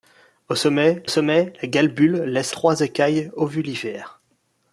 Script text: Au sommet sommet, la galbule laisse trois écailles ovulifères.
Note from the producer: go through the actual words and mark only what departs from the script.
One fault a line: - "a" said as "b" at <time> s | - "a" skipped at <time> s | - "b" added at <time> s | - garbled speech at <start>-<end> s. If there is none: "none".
none